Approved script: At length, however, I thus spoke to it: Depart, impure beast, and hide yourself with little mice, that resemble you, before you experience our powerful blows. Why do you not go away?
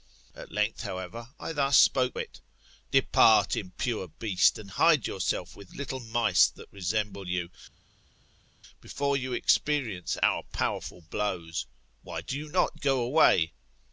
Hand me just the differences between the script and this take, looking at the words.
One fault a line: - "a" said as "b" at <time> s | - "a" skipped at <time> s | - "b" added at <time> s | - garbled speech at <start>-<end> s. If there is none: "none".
- "to" skipped at 2.2 s